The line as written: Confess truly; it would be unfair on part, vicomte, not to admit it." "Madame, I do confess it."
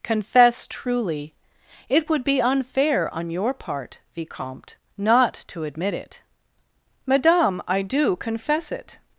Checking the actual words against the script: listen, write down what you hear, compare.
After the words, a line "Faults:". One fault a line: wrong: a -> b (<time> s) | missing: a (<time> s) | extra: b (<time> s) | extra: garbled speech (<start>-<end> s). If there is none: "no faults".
Confess truly; it would be unfair on your part, vicomte, not to admit it." "Madame, I do confess it."
Faults:
extra: your (3.3 s)